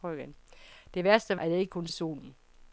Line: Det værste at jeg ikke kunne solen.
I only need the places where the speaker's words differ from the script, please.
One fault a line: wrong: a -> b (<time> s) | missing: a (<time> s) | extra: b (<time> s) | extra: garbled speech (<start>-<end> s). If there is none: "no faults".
no faults